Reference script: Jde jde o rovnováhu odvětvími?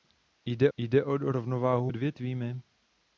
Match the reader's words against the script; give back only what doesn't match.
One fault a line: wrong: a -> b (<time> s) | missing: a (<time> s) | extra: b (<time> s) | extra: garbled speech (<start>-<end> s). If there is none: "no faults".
no faults